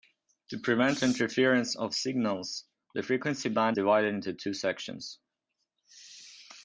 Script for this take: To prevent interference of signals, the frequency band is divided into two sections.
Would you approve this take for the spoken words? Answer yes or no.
no